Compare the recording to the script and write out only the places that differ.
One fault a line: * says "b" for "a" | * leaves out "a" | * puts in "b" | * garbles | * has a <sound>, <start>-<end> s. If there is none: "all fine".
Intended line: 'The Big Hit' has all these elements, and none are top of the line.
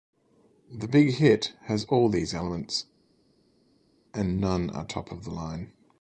all fine